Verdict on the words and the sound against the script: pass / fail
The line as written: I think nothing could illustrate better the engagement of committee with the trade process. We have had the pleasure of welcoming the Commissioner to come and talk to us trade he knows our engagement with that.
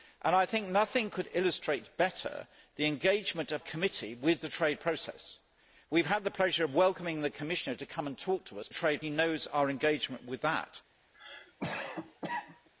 fail